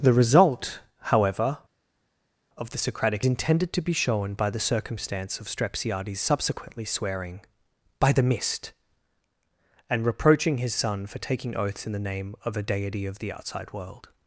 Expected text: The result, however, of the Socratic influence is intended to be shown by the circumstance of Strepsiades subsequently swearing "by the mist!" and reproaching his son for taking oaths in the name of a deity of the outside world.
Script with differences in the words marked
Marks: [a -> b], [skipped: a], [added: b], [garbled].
The result, however, of the Socratic [skipped: influence is] intended to be shown by the circumstance of Strepsiades subsequently swearing "by the mist!" and reproaching his son for taking oaths in the name of a deity of the outside world.